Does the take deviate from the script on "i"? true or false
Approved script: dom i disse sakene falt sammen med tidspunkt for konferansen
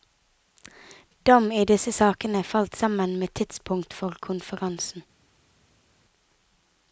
false